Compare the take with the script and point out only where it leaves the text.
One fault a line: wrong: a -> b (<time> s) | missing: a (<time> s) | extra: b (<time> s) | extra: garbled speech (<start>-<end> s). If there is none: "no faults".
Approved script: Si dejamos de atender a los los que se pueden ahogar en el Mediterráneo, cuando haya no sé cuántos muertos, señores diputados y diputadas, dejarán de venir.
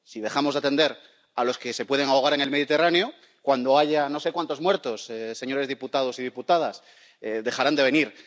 missing: los (1.6 s)